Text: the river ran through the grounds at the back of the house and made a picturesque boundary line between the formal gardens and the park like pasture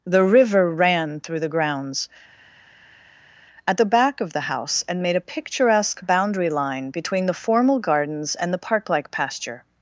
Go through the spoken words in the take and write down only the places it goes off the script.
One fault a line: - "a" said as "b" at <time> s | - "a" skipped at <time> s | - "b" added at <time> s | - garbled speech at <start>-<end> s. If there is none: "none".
none